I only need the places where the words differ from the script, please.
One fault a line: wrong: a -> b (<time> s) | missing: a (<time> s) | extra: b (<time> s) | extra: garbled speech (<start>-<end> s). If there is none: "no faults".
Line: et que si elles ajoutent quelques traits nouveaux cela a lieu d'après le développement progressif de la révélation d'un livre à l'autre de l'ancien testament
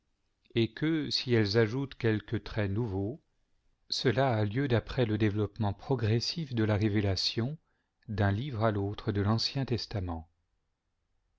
no faults